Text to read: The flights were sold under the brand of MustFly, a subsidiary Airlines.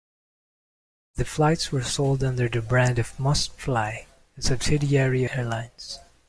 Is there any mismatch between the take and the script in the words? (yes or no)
no